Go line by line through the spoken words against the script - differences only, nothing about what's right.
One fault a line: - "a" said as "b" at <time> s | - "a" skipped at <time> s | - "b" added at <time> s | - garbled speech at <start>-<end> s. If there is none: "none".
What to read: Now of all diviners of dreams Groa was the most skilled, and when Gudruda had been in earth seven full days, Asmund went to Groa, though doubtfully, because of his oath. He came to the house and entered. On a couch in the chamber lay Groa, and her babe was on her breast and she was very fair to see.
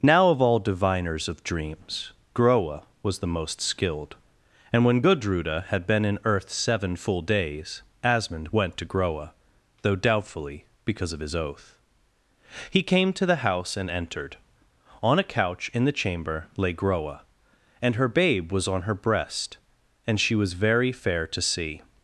none